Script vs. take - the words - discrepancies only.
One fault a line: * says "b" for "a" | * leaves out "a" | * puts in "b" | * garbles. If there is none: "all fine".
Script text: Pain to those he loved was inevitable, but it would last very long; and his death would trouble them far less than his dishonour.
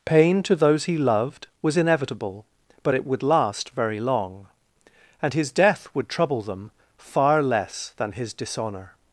all fine